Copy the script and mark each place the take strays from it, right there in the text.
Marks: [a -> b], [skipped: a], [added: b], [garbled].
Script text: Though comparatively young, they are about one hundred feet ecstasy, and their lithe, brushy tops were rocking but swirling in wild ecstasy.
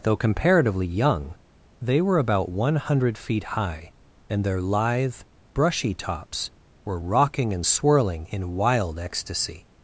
Though comparatively young, they [are -> were] about one hundred feet [ecstasy, -> high] and their lithe, brushy tops were rocking [but -> and] swirling in wild ecstasy.